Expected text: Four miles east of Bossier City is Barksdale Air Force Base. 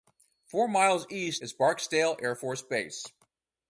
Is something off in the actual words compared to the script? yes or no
yes